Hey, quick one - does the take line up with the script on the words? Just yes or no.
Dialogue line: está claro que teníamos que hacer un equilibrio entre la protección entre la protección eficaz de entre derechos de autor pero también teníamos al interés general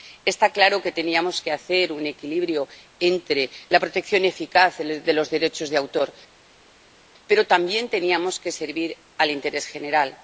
no